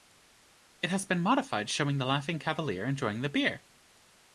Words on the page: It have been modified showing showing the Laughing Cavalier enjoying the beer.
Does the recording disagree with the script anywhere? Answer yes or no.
yes